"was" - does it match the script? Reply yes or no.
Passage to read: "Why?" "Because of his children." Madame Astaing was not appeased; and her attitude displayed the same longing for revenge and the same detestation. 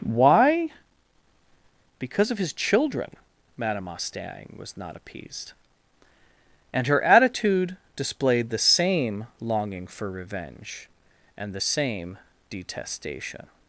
yes